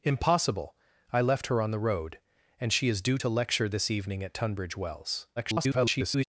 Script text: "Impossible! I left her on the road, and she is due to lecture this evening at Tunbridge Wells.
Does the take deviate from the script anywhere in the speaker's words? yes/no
yes